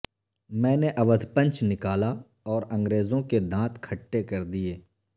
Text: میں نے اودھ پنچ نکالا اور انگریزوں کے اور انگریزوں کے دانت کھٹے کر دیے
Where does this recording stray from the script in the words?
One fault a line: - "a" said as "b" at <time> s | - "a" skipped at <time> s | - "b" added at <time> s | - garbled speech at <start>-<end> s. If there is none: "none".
- "اور انگریزوں کے" skipped at 3.4 s